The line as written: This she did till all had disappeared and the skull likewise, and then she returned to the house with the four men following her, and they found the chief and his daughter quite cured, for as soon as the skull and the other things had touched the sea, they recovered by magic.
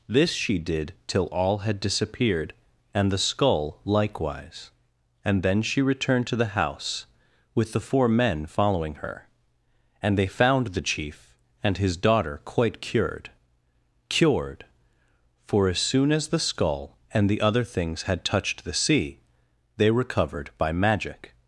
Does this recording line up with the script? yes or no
no